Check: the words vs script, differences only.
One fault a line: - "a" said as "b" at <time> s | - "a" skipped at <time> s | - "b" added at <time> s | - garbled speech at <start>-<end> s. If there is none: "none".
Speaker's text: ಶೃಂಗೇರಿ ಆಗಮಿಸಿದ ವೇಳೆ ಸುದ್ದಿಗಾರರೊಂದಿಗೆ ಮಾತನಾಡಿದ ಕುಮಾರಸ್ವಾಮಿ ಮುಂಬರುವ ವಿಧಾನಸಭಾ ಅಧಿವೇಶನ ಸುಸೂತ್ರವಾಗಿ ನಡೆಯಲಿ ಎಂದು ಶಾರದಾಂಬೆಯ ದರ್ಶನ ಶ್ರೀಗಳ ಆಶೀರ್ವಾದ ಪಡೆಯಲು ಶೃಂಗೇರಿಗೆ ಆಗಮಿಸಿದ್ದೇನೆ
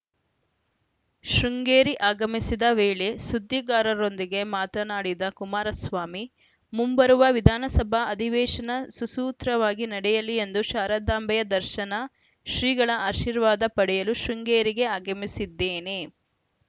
none